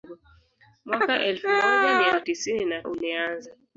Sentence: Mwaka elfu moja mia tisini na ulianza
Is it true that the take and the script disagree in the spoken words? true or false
false